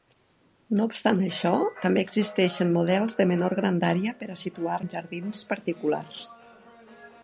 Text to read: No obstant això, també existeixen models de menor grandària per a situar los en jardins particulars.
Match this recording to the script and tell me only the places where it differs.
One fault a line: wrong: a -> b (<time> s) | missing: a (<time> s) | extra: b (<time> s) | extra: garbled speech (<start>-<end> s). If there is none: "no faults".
missing: los (4.8 s)